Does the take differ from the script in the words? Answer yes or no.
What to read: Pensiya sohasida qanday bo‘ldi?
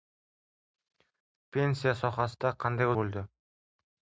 no